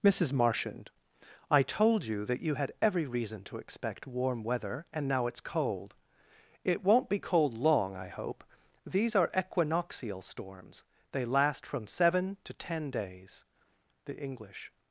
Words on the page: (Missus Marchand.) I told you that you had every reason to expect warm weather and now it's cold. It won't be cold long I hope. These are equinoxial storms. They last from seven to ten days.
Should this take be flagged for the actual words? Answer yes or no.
yes